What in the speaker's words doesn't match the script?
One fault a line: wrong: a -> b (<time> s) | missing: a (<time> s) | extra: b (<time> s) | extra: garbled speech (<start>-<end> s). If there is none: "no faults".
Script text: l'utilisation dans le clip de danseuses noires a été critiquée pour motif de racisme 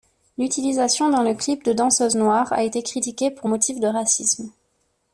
no faults